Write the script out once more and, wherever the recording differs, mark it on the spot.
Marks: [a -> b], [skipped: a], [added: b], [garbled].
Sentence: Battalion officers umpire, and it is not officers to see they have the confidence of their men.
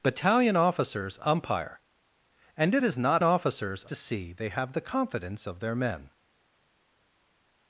Battalion officers umpire, and it is not officers to see they have the confidence of their men.